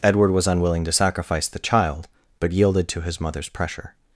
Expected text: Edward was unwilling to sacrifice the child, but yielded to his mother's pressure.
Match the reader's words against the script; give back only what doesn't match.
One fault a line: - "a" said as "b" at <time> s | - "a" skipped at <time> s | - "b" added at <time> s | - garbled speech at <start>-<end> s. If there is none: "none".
none